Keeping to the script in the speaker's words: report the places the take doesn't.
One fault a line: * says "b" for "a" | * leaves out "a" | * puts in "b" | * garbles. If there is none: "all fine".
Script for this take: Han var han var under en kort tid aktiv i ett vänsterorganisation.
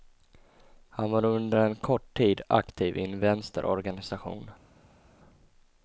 * leaves out "han var"
* says "en" for "ett"